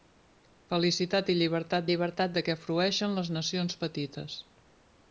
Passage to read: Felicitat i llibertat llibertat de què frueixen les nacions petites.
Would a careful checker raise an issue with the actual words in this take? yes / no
no